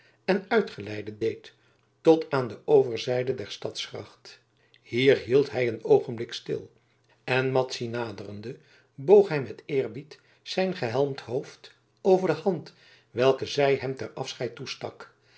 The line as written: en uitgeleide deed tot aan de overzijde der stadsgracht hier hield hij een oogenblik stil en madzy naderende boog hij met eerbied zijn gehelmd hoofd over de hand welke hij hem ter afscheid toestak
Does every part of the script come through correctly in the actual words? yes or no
no